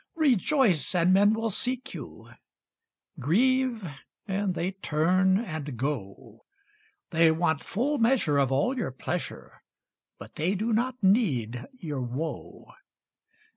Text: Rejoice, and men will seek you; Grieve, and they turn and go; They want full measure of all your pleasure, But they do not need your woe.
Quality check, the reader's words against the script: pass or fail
pass